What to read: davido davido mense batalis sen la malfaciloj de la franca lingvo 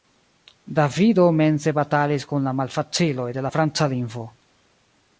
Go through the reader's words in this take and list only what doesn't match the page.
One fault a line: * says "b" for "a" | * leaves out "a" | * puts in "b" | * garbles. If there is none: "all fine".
* leaves out "davido"
* says "kun" for "sen"